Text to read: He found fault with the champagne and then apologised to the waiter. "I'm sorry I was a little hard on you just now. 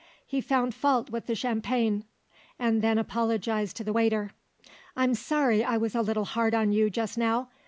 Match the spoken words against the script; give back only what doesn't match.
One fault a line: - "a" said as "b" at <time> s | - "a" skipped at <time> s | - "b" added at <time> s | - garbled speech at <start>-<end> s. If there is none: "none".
none